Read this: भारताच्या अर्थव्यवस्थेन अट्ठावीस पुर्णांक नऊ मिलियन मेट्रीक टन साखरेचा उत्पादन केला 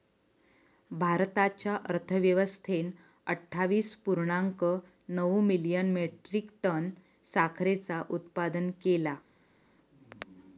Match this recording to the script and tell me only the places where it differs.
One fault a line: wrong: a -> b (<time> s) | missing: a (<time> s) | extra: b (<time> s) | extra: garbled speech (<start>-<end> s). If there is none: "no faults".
no faults